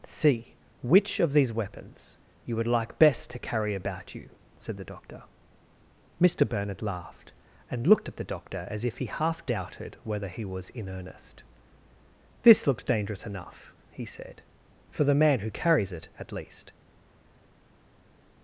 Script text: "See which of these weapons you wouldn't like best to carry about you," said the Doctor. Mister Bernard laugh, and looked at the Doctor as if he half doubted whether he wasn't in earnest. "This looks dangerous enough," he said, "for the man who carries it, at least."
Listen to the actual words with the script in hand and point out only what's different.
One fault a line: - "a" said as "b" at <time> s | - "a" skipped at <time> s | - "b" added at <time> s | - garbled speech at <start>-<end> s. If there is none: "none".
- "wouldn't" said as "would" at 2.5 s
- "laugh" said as "laughed" at 6.8 s
- "wasn't" said as "was" at 10.5 s